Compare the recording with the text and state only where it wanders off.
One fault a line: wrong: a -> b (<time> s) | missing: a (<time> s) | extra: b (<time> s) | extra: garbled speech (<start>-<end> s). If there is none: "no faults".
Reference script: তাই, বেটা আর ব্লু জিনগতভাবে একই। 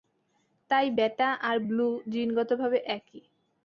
no faults